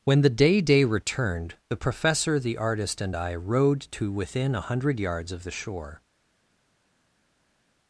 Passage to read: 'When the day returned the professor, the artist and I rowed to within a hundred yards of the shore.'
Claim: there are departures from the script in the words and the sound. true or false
true